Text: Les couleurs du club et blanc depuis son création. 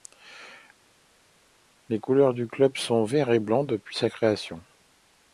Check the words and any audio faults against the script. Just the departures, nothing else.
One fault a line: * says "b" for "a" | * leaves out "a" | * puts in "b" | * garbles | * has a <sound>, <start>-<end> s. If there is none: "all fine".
* puts in "sont vert"
* says "sa" for "son"